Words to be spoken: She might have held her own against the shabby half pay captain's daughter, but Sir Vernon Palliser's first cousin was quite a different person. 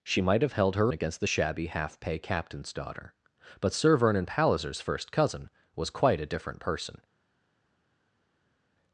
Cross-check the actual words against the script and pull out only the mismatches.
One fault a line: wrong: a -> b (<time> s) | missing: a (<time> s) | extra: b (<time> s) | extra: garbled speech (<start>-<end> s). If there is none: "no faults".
missing: own (0.9 s)